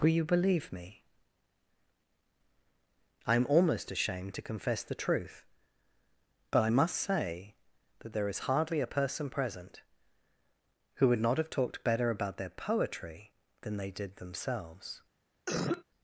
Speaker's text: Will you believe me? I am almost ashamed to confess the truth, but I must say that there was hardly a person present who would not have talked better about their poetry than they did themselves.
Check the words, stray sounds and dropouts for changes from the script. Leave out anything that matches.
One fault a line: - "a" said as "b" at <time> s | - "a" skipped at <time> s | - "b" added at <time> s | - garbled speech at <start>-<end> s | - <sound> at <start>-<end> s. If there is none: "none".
- "was" said as "is" at 8.3 s
- cough at 15.5-15.8 s